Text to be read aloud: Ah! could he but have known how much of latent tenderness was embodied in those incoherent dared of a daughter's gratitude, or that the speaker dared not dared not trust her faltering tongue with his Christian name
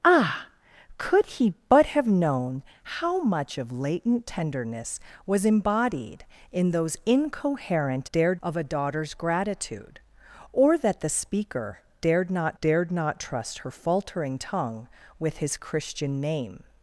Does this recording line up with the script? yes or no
yes